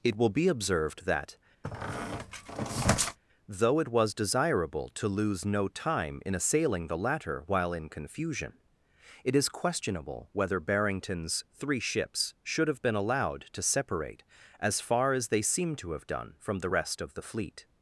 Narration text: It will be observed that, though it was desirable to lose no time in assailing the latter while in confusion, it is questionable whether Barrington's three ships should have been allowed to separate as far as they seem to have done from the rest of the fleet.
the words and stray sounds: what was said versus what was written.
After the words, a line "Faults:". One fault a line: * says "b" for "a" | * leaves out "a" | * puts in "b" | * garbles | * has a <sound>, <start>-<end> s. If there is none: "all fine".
It will be observed that, though it was desirable to lose no time in assailing the latter while in confusion, it is questionable whether Barrington's three ships should have been allowed to separate as far as they seem to have done from the rest of the fleet.
Faults:
* has a squeak, 1.6-3.2 s